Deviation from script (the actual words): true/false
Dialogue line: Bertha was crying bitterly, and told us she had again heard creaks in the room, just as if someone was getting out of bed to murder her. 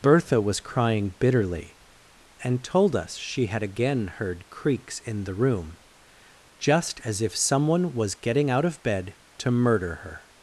false